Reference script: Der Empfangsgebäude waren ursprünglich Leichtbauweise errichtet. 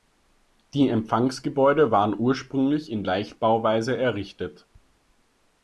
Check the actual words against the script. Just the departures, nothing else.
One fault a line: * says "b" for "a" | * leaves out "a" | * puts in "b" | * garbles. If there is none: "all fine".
* says "Die" for "Der"
* puts in "in"